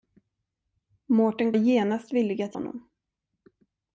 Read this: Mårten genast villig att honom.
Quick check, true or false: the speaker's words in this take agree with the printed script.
true